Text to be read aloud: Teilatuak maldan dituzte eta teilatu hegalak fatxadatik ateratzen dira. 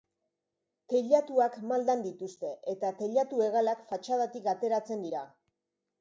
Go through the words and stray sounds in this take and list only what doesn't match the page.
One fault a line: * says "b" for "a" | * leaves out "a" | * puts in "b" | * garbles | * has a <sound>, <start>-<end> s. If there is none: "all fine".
all fine